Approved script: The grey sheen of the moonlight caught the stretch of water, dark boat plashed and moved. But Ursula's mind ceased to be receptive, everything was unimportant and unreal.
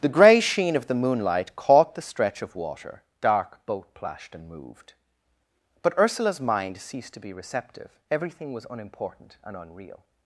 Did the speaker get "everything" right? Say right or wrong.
right